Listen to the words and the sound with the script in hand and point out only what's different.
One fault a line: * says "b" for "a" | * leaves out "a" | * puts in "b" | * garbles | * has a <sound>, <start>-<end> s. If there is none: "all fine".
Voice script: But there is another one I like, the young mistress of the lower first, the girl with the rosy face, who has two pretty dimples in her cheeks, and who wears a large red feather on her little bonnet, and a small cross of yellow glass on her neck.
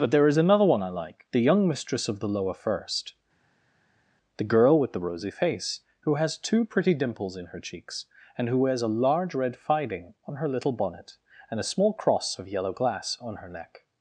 * says "fiding" for "feather"